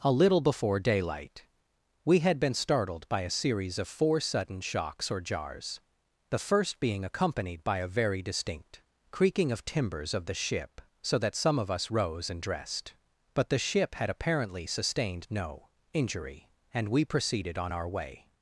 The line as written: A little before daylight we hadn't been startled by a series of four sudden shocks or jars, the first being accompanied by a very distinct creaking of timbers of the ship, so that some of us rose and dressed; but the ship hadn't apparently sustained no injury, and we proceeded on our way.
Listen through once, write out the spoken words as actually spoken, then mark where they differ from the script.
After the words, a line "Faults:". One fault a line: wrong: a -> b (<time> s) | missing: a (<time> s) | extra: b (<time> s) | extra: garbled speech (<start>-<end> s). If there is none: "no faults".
A little before daylight we had been startled by a series of four sudden shocks or jars, the first being accompanied by a very distinct creaking of timbers of the ship, so that some of us rose and dressed; but the ship had apparently sustained no injury, and we proceeded on our way.
Faults:
wrong: hadn't -> had (2.2 s)
wrong: hadn't -> had (14.0 s)